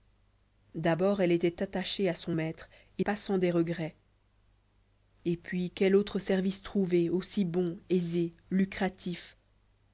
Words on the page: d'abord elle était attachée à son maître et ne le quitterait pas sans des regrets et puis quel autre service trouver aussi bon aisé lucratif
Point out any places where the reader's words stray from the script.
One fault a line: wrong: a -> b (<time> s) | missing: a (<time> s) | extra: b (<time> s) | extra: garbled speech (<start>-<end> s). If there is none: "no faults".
missing: ne le quitterait (3.0 s)